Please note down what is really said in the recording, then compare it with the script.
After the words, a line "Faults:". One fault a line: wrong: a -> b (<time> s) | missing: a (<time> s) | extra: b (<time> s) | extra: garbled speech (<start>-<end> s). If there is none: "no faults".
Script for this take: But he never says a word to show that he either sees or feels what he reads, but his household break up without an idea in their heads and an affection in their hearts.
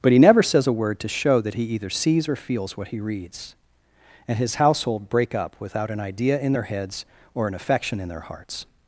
But he never says a word to show that he either sees or feels what he reads, and his household break up without an idea in their heads or an affection in their hearts.
Faults:
wrong: but -> and (4.3 s)
wrong: and -> or (7.3 s)